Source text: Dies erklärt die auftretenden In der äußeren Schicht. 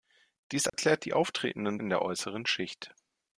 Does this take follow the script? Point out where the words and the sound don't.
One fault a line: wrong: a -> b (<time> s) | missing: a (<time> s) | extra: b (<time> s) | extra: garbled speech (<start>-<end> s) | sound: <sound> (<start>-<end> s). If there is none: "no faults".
sound: dropout (0.7-0.7 s)